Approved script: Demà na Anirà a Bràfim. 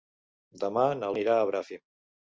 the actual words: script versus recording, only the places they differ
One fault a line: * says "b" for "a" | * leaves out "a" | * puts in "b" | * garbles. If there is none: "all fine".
all fine